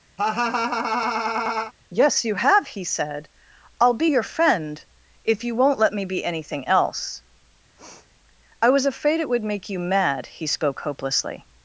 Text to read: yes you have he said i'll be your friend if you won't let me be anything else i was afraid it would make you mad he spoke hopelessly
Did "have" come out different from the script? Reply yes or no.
no